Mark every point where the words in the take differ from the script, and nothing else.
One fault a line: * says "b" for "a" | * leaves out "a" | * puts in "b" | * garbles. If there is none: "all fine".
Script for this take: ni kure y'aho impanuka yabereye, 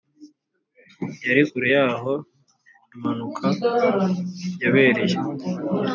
* says "yari" for "ni"